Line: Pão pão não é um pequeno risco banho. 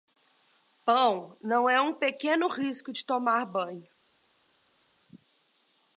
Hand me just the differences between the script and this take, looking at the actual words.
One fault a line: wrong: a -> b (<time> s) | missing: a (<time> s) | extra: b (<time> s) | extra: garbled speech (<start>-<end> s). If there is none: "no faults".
missing: pão (1.4 s)
extra: de tomar (2.9 s)